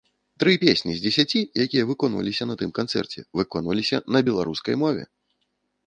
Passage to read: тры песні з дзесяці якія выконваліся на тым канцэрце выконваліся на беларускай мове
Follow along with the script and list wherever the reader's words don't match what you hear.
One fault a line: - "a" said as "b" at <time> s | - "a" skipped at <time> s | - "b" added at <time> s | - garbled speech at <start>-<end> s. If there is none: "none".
none